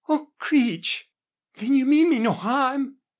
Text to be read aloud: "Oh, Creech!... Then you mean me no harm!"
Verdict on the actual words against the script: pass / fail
pass